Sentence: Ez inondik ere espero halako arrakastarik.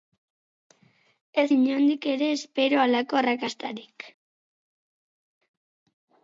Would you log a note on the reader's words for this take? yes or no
no